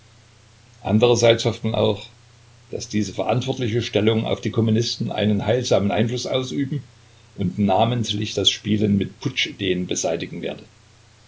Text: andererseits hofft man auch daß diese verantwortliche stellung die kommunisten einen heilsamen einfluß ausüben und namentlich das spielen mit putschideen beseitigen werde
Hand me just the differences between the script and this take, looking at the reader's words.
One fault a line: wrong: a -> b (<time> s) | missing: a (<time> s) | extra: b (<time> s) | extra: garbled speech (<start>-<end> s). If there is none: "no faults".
extra: auf (4.2 s)